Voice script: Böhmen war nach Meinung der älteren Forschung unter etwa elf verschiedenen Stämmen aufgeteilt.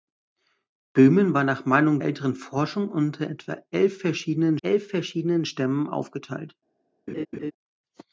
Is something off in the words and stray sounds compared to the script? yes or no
yes